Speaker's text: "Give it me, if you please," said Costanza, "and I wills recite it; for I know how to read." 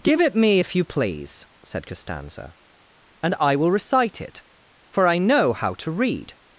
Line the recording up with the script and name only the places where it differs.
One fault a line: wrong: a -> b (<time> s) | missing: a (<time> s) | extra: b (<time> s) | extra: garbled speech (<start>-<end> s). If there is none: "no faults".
wrong: wills -> will (3.6 s)